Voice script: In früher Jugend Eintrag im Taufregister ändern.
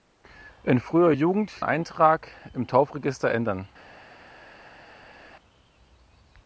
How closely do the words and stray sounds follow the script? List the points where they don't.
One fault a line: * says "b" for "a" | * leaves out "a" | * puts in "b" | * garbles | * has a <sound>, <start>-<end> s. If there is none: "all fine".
all fine